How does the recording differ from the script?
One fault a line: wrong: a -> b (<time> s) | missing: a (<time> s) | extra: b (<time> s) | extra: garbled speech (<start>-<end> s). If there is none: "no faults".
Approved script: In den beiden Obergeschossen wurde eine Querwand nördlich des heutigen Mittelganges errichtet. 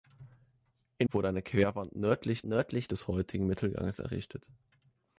missing: den beiden Obergeschossen (1.1 s)
extra: nördlich (2.4 s)